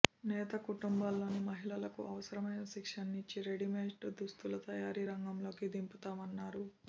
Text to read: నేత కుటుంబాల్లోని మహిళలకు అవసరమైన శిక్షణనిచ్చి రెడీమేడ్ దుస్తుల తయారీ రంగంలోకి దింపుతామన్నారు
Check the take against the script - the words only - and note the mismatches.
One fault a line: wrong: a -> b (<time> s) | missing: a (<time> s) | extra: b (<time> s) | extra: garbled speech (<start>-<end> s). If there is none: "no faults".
no faults